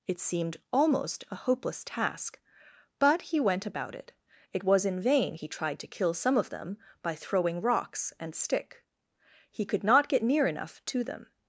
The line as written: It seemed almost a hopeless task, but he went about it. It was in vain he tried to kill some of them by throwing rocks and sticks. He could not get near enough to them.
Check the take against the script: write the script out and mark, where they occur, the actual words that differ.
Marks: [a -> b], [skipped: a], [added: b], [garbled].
It seemed almost a hopeless task, but he went about it. It was in vain he tried to kill some of them by throwing rocks and [sticks. -> stick] He could not get near enough to them.